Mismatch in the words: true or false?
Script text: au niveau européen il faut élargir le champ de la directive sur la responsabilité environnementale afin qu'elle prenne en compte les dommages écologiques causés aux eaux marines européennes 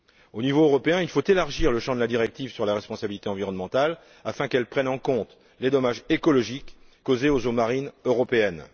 false